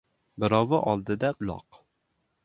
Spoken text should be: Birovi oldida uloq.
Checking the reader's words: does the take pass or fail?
pass